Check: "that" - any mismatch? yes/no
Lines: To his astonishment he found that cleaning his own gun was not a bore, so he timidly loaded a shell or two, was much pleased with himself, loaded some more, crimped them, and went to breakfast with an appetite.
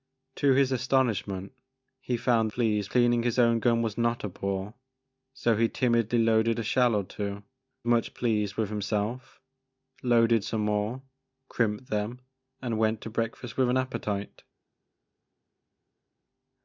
yes